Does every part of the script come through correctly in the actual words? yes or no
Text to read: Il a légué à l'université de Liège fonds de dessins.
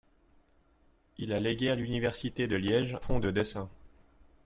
yes